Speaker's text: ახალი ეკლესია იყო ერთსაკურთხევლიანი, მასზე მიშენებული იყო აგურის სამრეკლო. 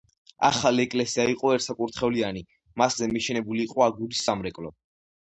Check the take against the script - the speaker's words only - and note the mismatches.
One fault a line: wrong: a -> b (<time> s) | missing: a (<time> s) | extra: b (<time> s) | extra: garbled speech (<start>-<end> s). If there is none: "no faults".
no faults